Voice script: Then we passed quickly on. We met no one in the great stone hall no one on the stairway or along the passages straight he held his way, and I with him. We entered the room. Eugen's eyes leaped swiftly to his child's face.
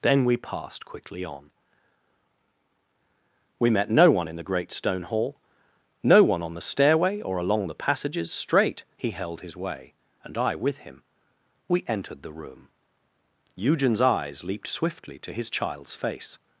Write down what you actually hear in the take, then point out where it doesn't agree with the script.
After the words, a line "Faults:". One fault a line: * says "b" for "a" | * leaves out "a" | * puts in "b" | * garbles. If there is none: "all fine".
Then we passed quickly on. We met no one in the great stone hall no one on the stairway or along the passages straight he held his way, and I with him. We entered the room. Eugen's eyes leaped swiftly to his child's face.
Faults:
all fine